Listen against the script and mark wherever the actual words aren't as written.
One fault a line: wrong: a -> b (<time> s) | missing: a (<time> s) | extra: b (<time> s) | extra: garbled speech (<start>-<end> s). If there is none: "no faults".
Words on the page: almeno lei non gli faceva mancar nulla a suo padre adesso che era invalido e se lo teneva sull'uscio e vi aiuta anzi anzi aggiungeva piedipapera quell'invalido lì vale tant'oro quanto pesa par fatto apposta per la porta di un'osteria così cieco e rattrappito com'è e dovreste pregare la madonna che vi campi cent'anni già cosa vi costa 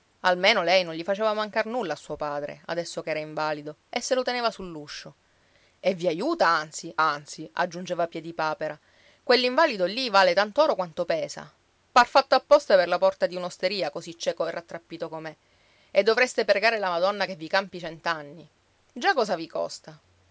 no faults